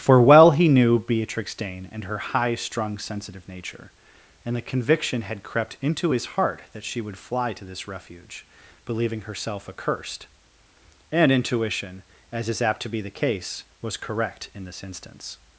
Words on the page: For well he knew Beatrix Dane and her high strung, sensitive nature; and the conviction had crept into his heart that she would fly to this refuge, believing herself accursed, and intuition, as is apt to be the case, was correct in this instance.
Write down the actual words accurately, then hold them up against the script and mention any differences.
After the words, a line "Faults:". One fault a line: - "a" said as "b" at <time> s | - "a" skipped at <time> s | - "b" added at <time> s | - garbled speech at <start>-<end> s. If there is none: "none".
For well he knew Beatrix Dane and her high strung, sensitive nature; and the conviction had crept into his heart that she would fly to this refuge, believing herself accursed, and intuition, as is apt to be the case, was correct in this instance.
Faults:
none